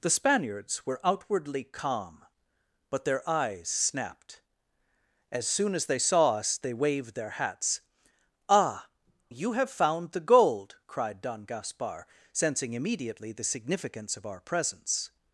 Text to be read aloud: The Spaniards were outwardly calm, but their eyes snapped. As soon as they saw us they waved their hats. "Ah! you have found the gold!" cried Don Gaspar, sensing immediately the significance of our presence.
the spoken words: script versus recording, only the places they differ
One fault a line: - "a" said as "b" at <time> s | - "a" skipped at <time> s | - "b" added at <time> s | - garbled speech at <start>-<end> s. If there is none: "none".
none